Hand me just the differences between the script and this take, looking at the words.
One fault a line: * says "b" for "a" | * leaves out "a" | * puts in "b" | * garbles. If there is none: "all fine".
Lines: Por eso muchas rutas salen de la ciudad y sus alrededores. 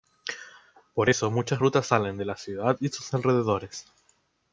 all fine